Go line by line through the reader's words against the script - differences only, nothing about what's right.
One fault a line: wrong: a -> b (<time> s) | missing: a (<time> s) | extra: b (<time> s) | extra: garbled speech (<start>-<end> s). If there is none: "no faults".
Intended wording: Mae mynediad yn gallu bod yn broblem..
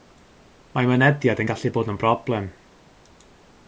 no faults